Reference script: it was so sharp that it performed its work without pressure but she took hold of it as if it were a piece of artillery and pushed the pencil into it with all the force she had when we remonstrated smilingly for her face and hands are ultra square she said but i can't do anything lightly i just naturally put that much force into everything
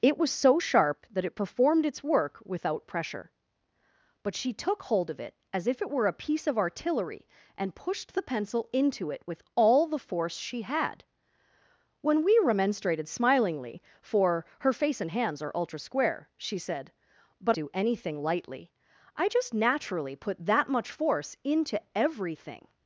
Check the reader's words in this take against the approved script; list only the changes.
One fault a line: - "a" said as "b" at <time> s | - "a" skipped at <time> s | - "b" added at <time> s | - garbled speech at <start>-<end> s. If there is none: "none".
- "i can't" skipped at 17.6 s